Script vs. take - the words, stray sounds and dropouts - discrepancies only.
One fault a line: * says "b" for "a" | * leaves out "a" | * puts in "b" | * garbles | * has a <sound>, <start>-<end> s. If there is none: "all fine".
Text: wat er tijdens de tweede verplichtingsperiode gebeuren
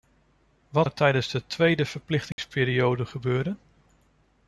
* has a dropout, 2.3-2.4 s